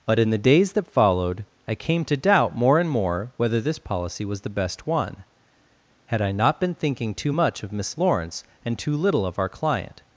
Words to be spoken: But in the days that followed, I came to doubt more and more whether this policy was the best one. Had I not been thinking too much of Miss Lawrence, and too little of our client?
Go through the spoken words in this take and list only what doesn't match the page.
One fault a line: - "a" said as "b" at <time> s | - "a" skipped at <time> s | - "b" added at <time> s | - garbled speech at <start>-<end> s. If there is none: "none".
none